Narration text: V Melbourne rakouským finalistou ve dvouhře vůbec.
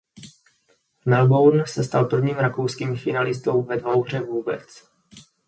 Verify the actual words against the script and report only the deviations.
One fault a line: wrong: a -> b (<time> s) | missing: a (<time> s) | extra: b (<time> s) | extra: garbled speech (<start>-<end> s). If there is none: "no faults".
extra: se stal prvním (1.7 s)